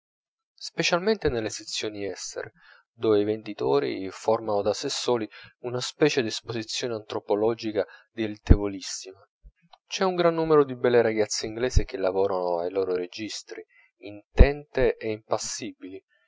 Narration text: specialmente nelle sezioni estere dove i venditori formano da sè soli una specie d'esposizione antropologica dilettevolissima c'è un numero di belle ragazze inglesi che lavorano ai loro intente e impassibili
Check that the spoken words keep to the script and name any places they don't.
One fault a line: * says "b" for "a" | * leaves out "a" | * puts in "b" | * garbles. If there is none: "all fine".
* puts in "gran"
* puts in "registri"